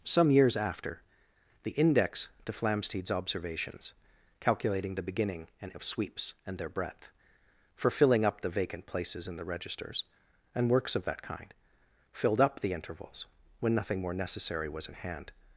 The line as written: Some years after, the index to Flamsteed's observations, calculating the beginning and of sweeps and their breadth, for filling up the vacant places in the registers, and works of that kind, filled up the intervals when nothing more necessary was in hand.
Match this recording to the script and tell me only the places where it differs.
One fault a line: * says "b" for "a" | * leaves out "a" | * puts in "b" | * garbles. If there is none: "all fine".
all fine